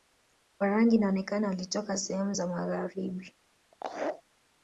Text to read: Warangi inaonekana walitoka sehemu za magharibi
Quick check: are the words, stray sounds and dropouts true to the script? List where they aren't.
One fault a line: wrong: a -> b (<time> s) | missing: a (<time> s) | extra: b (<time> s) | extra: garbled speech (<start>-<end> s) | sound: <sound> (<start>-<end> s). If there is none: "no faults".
sound: laugh (3.7-4.2 s)